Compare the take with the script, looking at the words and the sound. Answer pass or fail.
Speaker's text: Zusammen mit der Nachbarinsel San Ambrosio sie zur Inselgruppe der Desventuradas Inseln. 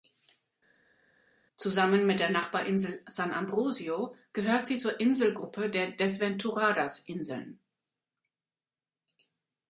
fail